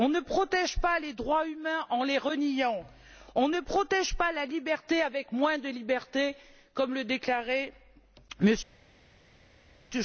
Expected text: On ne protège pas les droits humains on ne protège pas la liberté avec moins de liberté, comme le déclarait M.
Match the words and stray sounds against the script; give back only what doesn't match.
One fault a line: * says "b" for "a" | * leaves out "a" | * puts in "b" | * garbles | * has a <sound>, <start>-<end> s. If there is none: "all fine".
* puts in "en les reniant"